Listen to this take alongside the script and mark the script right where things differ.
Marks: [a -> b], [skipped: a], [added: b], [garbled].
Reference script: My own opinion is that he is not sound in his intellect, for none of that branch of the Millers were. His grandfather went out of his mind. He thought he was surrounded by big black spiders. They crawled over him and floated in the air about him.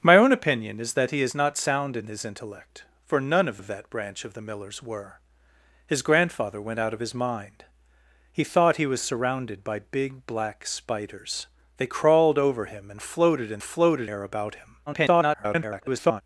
My own opinion is that he is not sound in his intellect, for none of [added: of] that branch of the Millers were. His grandfather went out of his mind. He thought he was surrounded by big black spiders. They crawled over him and floated in [the -> floated] air about him. [garbled]